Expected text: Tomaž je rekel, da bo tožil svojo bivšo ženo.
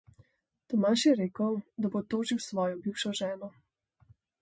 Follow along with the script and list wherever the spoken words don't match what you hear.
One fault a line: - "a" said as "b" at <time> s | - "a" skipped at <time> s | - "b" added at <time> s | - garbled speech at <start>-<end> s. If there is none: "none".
none